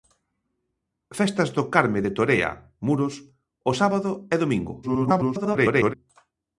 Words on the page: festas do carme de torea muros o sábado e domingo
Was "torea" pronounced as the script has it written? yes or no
yes